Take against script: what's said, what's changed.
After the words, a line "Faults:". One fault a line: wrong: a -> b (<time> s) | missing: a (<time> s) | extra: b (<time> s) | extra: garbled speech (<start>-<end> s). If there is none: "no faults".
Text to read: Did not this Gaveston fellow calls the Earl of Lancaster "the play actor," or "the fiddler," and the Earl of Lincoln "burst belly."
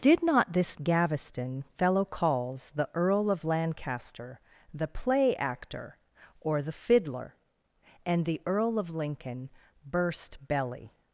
Did not this Gaveston fellow calls the Earl of Lancaster "the play actor," or "the fiddler," and the Earl of Lincoln "burst belly."
Faults:
no faults